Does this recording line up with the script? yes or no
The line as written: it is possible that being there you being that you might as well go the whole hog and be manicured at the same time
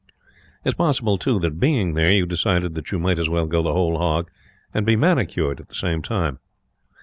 no